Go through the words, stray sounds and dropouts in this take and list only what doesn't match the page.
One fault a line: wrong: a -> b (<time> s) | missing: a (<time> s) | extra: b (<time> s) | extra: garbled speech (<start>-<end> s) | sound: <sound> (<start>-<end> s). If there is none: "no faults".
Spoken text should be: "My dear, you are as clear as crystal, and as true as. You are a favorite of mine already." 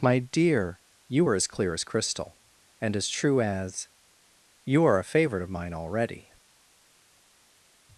no faults